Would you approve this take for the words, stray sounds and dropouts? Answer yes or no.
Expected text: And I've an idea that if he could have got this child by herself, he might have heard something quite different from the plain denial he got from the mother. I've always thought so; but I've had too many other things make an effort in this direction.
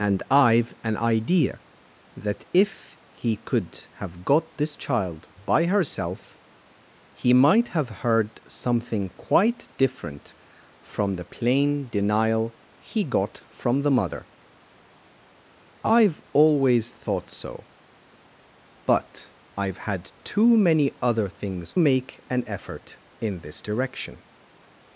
yes